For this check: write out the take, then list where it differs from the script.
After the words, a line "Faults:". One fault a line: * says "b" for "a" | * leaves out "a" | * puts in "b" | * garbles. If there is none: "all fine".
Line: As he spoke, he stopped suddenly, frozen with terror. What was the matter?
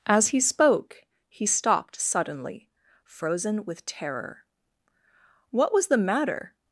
As he spoke, he stopped suddenly, frozen with terror. What was the matter?
Faults:
all fine